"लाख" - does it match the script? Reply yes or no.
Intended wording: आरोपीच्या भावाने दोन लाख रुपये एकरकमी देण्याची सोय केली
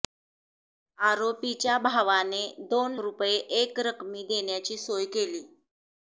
no